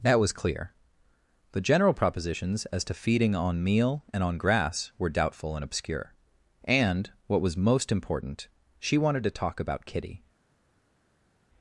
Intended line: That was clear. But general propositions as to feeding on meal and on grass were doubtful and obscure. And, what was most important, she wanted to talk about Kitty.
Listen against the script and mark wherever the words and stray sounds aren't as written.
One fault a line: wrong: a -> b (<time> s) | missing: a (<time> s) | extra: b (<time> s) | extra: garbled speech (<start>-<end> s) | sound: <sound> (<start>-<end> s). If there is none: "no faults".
wrong: But -> The (1.5 s)